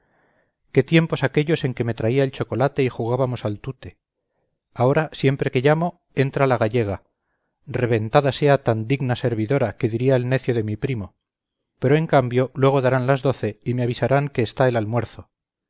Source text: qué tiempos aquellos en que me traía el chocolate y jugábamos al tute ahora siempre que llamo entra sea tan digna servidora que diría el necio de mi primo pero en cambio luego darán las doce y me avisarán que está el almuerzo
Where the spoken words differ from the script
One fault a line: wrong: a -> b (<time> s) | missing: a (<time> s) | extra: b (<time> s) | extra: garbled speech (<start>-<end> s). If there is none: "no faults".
extra: la gallega reventada (6.5 s)